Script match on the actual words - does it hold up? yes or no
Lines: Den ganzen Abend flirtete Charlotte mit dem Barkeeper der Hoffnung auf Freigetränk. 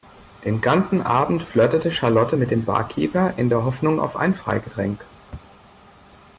no